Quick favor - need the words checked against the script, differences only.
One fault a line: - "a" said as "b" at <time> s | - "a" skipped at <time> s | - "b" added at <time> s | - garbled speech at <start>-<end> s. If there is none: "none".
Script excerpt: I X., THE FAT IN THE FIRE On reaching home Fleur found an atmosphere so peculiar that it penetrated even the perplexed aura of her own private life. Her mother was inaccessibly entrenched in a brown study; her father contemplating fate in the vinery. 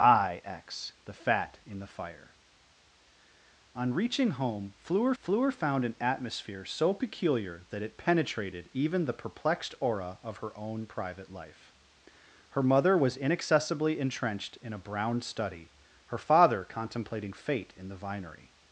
- "Fleur" added at 5.2 s